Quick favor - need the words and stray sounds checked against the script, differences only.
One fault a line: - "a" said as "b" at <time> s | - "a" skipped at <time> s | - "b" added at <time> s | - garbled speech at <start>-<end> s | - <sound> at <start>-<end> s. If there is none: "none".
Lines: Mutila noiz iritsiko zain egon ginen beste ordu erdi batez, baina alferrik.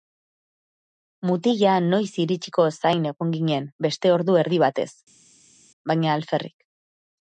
none